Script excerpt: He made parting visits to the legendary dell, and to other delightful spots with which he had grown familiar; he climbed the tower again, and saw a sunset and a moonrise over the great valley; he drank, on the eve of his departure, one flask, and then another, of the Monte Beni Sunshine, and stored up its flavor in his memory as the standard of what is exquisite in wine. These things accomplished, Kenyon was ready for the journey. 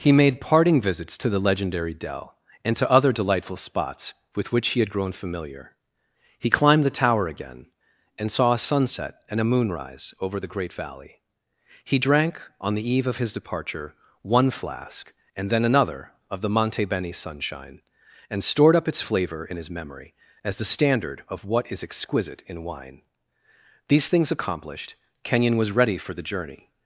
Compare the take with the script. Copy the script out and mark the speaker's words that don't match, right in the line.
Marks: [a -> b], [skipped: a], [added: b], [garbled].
He made parting visits to the legendary dell, and to other delightful spots with which he had grown familiar; he climbed the tower again, and saw a sunset and a moonrise over the great valley; he drank, on the eve of his departure, one flask, and then another, of the Monte Beni Sunshine, and stored up its flavor in his memory as the standard of what is exquisite in wine. These things accomplished, Kenyon was ready for the journey.